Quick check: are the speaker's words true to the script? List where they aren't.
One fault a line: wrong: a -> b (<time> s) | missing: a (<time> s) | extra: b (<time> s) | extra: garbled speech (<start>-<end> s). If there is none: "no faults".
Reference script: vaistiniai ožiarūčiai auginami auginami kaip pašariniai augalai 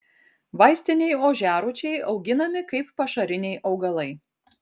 missing: auginami (2.6 s)